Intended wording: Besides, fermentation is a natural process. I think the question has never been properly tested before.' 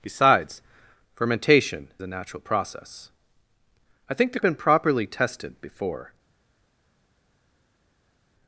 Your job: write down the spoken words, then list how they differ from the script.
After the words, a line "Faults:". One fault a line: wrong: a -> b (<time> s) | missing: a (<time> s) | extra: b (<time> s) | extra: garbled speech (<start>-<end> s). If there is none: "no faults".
Besides, fermentation a natural process. I think the been properly tested before.'
Faults:
missing: is (1.9 s)
missing: question has never (4.4 s)